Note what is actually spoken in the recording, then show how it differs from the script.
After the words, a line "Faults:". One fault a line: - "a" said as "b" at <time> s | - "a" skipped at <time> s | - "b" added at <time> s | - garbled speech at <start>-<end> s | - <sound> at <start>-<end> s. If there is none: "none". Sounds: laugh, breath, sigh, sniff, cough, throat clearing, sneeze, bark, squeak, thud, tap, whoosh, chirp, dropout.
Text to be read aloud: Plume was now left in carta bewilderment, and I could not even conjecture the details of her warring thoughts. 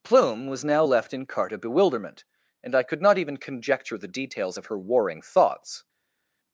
Plume was now left in carta bewilderment, and I could not even conjecture the details of her warring thoughts.
Faults:
none